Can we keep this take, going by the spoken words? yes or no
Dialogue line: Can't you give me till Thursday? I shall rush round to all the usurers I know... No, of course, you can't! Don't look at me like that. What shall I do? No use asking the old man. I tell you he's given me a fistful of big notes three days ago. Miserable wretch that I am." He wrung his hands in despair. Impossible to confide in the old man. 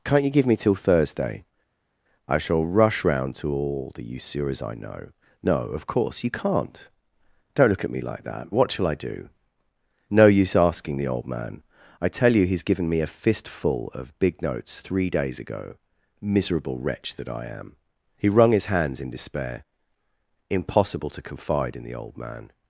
yes